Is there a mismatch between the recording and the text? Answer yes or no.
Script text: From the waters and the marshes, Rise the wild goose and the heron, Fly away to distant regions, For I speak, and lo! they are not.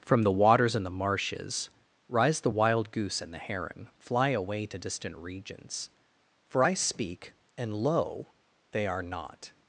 no